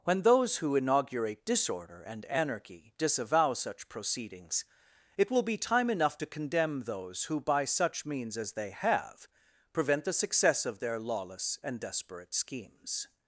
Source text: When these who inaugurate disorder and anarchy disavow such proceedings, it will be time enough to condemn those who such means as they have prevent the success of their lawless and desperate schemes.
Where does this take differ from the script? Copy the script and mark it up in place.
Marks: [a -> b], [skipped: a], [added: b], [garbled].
When [these -> those] who inaugurate disorder and anarchy disavow such proceedings, it will be time enough to condemn those who [added: by] such means as they have prevent the success of their lawless and desperate schemes.